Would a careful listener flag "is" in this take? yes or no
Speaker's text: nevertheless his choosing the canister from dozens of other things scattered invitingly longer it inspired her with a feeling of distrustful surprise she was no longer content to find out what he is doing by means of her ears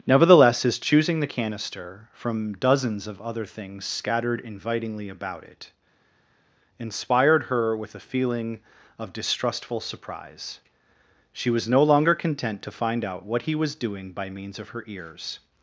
yes